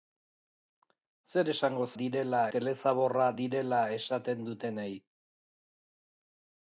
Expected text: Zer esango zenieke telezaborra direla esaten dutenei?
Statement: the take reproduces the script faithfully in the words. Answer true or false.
false